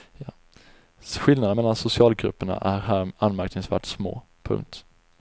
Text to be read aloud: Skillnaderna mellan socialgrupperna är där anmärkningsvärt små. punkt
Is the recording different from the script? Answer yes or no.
yes